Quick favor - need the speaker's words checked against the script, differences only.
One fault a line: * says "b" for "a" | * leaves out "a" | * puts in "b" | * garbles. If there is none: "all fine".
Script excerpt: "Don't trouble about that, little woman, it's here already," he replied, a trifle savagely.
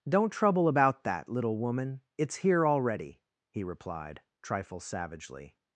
* leaves out "a"